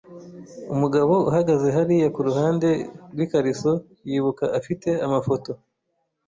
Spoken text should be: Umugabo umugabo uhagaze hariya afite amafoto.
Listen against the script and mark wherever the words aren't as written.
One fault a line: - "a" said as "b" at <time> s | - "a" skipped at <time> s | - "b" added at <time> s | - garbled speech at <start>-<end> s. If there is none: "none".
- "umugabo" skipped at 1.1 s
- "kuruhande rwikariso yibuka" added at 2.2 s